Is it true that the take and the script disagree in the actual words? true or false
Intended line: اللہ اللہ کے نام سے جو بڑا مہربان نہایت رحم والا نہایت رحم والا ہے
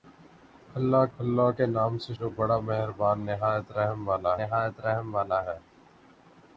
false